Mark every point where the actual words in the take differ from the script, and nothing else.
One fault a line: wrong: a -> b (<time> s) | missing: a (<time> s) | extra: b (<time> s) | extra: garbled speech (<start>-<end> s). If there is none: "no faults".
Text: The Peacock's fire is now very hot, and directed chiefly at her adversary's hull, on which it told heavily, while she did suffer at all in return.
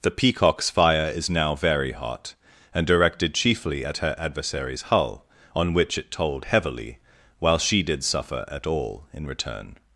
no faults